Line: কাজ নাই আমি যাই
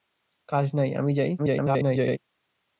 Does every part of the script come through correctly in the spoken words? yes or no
no